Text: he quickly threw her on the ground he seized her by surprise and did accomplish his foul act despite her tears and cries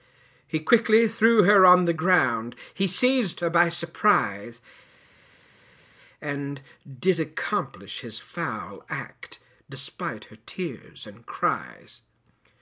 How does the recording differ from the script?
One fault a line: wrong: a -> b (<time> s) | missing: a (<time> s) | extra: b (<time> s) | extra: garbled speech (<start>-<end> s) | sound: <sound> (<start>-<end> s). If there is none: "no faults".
no faults